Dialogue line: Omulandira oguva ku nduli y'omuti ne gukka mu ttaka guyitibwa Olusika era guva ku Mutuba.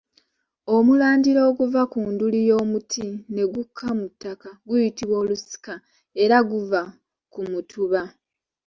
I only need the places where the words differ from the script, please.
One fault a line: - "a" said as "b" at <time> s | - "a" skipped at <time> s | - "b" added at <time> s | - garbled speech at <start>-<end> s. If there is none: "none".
none